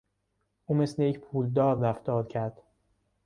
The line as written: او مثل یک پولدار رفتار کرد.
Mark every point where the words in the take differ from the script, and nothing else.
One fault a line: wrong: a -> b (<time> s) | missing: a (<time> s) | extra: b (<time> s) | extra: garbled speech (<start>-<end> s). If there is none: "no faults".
no faults